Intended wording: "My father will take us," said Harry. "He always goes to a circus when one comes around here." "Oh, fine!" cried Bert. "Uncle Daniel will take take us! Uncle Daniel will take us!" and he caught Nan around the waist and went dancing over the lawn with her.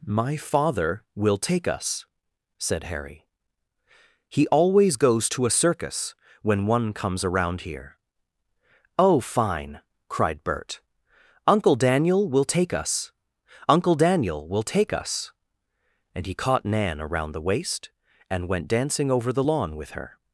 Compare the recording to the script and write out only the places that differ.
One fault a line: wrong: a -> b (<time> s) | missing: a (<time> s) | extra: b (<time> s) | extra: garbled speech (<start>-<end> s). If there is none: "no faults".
missing: take (12.7 s)